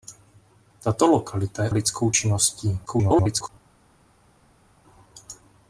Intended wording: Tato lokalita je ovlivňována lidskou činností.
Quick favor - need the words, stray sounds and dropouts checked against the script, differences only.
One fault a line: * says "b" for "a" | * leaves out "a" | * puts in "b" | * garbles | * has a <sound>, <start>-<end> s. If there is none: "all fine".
* leaves out "ovlivňována"
* garbles